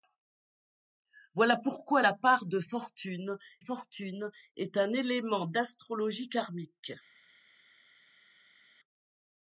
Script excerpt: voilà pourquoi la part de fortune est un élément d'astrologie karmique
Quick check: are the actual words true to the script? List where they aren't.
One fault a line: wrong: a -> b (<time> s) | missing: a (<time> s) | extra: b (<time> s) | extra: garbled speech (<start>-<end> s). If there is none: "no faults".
extra: fortune (3.6 s)